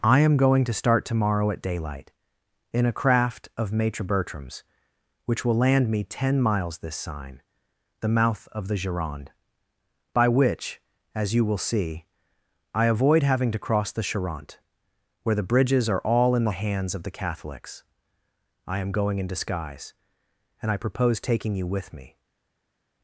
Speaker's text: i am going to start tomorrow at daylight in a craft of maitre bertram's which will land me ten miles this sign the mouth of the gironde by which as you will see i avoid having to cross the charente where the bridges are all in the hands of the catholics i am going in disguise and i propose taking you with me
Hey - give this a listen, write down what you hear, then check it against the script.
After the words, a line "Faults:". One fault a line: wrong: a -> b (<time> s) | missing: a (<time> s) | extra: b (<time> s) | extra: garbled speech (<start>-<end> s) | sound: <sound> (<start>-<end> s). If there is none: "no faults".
i am going to start tomorrow at daylight in a craft of maitre bertram's which will land me ten miles this sign the mouth of the gironde by which as you will see i avoid having to cross the charente where the bridges are all in the hands of the catholics i am going in disguise and i propose taking you with me
Faults:
no faults